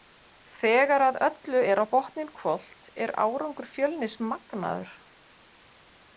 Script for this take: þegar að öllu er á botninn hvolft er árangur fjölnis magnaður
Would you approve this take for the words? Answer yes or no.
yes